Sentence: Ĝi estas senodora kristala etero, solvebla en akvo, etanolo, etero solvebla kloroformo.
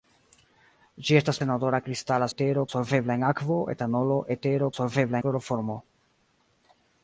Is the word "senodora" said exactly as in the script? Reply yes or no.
yes